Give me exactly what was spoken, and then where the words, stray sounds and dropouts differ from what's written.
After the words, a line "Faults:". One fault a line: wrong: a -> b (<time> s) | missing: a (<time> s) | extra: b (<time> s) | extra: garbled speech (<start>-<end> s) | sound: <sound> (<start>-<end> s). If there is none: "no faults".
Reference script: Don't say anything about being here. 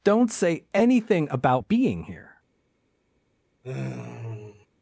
Don't say anything about being here.
Faults:
sound: sigh (3.6-4.7 s)